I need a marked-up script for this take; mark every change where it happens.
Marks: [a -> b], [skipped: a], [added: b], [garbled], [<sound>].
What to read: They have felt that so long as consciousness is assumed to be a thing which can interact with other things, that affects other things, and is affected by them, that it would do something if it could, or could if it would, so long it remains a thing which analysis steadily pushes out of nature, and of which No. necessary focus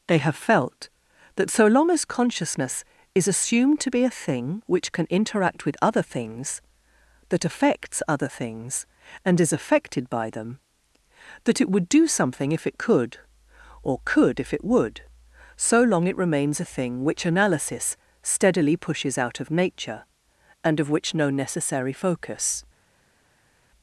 They have felt that so long as consciousness is assumed to be a thing which can interact with other things, that affects other things, and is affected by them, that it would do something if it could, or could if it would, so long it remains a thing which analysis steadily pushes out of nature, and of which No. necessary focus